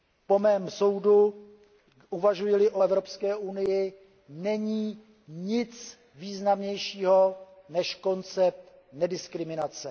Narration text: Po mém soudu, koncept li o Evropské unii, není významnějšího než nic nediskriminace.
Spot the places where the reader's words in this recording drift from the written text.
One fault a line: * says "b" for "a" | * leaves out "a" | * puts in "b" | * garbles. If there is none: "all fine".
* says "uvažuji" for "koncept"
* puts in "nic"
* says "koncept" for "nic"